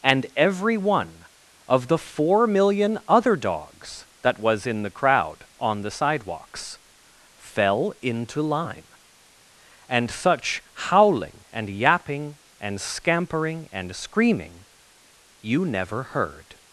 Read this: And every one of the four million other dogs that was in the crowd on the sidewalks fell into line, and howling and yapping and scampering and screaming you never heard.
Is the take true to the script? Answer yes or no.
no